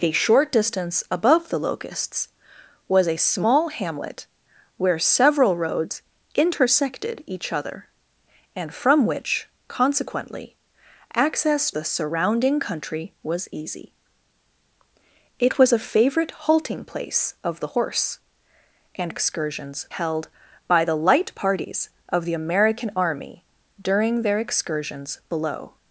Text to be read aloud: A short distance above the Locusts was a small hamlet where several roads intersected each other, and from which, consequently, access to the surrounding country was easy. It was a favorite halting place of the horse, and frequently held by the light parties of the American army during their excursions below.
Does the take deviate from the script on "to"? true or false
true